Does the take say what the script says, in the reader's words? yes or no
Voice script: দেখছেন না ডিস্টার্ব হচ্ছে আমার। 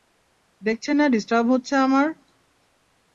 yes